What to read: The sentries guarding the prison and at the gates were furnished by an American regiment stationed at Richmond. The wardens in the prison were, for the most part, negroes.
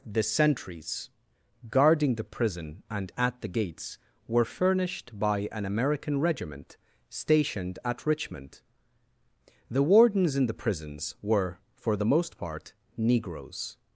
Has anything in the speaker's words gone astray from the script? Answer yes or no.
yes